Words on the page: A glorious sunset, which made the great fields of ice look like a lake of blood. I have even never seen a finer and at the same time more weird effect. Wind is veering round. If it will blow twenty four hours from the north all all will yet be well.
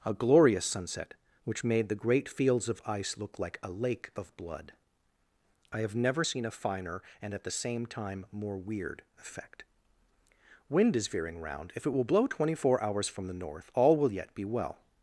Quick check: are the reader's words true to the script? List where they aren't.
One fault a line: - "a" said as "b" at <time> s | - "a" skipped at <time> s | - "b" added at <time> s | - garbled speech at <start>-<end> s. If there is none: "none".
- "even" skipped at 6.0 s
- "all" skipped at 14.0 s